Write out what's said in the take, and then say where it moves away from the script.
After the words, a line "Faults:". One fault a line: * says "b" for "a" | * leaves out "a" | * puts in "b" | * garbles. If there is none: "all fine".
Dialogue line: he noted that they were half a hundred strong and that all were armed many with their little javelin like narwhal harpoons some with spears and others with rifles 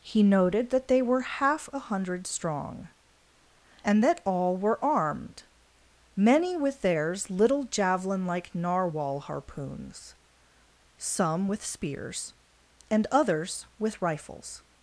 he noted that they were half a hundred strong and that all were armed many with theirs little javelin like narwhal harpoons some with spears and others with rifles
Faults:
* says "theirs" for "their"